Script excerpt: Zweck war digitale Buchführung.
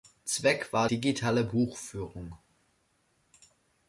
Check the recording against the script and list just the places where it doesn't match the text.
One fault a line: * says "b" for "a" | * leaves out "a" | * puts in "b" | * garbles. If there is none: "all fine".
all fine